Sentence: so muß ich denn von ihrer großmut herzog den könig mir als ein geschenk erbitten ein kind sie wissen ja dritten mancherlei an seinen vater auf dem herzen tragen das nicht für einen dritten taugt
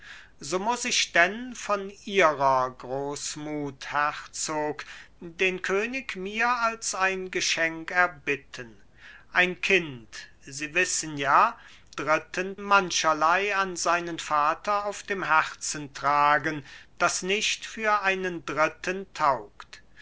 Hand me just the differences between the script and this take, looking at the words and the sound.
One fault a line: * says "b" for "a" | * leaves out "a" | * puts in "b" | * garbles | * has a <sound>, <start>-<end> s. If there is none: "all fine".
all fine